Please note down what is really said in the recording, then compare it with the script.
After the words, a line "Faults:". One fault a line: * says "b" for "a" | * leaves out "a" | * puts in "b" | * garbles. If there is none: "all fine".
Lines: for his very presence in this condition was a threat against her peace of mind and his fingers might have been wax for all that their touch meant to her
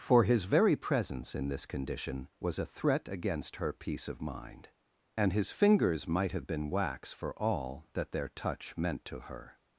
for his very presence in this condition was a threat against her peace of mind and his fingers might have been wax for all that their touch meant to her
Faults:
all fine